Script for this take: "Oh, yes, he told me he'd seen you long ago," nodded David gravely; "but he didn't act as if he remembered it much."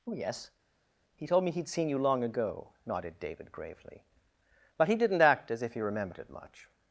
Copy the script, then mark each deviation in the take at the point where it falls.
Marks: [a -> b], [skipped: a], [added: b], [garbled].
"Oh, yes, he told me he'd seen you long ago," nodded David gravely; "but he didn't act as if he remembered it much."